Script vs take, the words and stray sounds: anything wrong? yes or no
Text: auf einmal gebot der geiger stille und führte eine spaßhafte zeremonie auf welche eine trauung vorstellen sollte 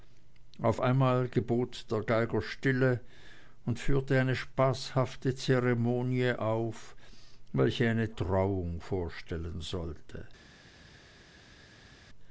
no